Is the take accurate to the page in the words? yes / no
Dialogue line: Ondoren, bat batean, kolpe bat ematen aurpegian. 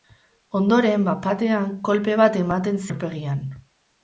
yes